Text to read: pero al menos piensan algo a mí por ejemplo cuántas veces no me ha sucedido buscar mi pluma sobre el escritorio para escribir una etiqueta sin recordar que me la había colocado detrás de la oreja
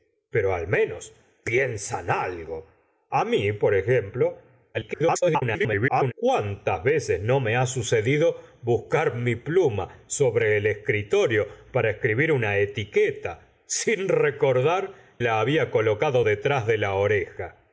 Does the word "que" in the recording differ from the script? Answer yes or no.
yes